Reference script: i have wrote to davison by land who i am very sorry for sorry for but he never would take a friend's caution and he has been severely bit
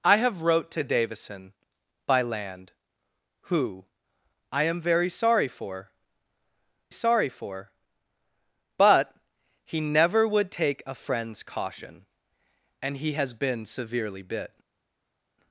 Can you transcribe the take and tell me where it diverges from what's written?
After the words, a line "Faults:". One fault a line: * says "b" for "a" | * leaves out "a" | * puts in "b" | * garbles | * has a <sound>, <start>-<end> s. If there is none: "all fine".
i have wrote to davison by land who i am very sorry for sorry for but he never would take a friend's caution and he has been severely bit
Faults:
all fine